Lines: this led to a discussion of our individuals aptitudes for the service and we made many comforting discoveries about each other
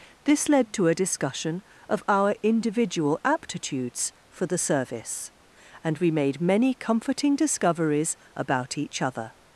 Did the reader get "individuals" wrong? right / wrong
wrong